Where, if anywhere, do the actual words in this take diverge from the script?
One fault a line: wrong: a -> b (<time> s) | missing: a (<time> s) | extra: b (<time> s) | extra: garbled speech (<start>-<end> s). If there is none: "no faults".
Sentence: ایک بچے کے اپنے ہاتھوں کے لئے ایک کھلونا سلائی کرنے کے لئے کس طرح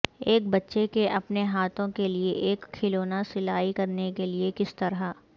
no faults